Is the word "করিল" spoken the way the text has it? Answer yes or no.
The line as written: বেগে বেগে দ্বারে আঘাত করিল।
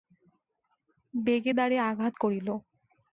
yes